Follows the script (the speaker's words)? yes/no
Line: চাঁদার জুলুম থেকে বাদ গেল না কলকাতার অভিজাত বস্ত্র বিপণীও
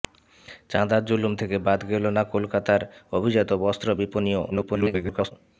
no